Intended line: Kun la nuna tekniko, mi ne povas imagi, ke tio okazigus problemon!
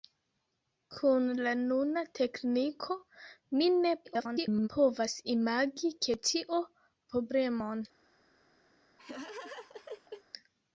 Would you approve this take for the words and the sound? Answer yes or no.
no